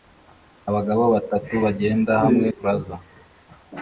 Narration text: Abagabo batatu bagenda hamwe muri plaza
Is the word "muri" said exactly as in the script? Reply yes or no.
no